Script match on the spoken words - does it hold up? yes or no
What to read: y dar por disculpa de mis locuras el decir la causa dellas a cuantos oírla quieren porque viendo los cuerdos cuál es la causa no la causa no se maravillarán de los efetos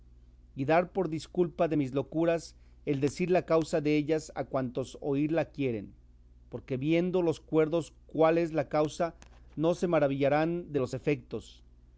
no